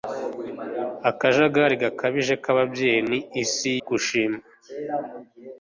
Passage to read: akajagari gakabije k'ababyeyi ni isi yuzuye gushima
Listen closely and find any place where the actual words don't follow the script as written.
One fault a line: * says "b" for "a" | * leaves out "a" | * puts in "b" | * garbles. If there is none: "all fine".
* leaves out "yuzuye"